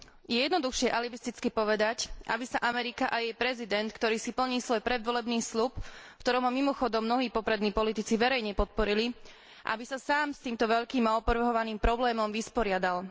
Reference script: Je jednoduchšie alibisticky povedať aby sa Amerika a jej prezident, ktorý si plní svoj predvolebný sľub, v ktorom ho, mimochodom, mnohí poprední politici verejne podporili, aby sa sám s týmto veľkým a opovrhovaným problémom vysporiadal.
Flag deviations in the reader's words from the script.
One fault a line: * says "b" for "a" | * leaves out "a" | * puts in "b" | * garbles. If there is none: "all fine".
all fine